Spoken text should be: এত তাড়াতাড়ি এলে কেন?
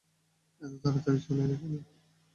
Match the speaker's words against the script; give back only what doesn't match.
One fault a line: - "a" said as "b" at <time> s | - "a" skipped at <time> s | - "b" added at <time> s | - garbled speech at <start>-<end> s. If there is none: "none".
- "চলে" added at 1.2 s